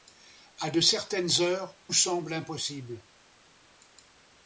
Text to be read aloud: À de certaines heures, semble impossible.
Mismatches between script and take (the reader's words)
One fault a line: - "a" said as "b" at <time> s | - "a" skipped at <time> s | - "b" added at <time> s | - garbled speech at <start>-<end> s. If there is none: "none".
none